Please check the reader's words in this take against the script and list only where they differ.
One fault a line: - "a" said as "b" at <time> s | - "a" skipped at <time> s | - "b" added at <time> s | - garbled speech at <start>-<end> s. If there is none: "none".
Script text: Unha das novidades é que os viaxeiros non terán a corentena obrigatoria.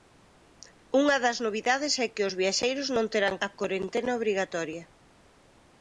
none